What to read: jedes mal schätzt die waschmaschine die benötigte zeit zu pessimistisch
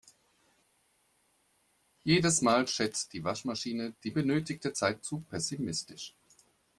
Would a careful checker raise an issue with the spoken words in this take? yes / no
no